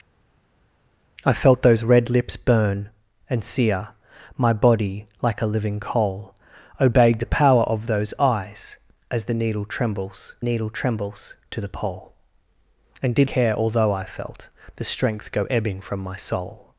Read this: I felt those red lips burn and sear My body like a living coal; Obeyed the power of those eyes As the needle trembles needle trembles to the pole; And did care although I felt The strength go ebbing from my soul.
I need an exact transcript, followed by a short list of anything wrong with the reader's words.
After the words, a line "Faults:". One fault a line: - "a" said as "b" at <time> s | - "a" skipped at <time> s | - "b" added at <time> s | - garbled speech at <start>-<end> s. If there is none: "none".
I felt those red lips burn and sear My body like a living coal; Obeyed the power of those eyes As the needle trembles needle trembles to the pole; And did care although I felt The strength go ebbing from my soul.
Faults:
none